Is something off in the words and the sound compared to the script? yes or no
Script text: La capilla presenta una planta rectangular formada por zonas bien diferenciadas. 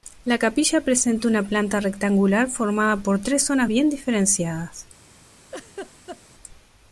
yes